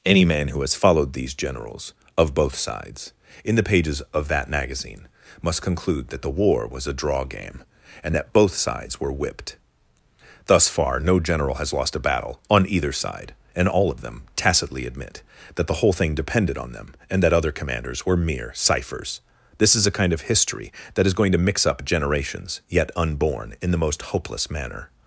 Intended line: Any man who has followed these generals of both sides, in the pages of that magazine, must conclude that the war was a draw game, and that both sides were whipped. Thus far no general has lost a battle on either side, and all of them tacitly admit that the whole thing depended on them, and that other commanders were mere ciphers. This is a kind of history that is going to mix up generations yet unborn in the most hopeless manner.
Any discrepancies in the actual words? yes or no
no